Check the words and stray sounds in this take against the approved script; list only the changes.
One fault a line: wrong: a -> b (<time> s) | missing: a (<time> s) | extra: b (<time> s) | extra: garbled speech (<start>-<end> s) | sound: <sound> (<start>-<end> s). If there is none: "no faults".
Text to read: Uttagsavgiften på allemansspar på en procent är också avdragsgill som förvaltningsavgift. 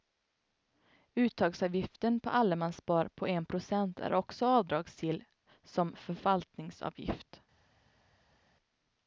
no faults